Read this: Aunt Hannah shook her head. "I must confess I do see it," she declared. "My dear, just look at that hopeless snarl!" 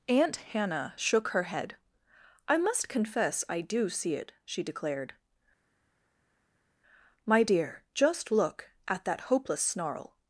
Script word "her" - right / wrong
right